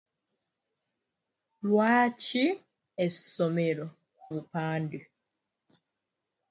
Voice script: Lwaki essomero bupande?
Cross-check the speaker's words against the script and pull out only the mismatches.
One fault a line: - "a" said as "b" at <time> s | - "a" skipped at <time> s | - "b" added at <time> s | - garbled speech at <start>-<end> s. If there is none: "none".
none